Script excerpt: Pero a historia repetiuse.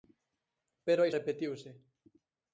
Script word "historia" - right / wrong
wrong